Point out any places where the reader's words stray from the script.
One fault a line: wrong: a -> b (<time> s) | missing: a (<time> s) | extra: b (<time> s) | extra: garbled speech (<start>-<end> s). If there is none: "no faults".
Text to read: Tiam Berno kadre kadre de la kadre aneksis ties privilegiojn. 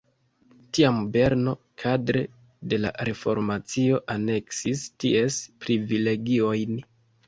missing: kadre (2.2 s)
wrong: kadre -> reformacio (3.1 s)